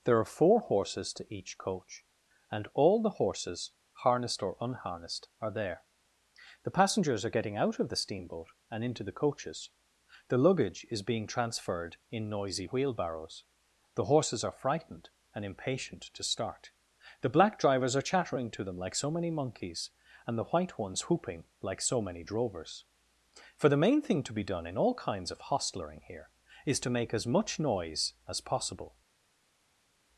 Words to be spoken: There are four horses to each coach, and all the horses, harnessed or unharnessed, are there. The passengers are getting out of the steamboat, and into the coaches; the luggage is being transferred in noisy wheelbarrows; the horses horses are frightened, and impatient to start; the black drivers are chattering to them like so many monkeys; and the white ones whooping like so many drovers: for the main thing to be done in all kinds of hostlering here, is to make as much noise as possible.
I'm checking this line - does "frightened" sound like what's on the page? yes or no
yes